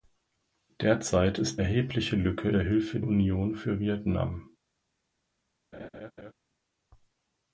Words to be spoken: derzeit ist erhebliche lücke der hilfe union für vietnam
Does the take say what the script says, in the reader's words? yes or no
yes